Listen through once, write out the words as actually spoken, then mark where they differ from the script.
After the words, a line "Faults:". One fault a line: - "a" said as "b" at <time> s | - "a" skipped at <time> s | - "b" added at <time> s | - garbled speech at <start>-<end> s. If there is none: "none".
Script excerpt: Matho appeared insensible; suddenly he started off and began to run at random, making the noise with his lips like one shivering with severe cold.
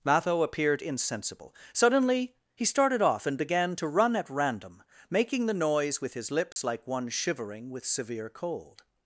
Matho appeared insensible; suddenly he started off and began to run at random, making the noise with his lips like one shivering with severe cold.
Faults:
none